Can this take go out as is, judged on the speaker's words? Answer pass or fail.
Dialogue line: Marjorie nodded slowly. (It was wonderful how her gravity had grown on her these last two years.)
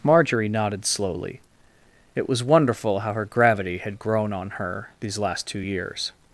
pass